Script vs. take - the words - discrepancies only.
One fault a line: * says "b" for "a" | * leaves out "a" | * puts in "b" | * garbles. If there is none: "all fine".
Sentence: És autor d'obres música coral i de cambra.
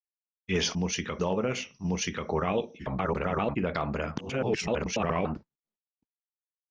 * says "música" for "autor"
* garbles
* garbles